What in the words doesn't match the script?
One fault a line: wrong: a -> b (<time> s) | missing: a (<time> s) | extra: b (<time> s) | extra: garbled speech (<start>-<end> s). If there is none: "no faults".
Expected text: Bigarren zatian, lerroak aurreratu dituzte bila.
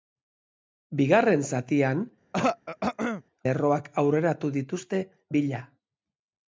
no faults